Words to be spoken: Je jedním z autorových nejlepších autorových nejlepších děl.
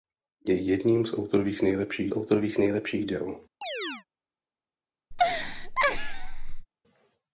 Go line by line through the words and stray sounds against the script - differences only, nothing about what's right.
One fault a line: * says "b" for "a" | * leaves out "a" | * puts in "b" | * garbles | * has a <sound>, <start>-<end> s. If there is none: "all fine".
* has a chirp, 3.6-4.0 s
* has a laugh, 5.1-6.7 s